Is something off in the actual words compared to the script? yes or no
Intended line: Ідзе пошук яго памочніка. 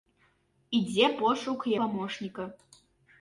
yes